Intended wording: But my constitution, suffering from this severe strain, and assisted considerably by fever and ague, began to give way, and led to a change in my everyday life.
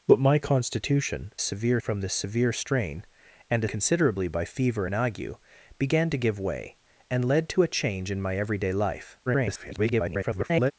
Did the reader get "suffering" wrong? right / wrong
wrong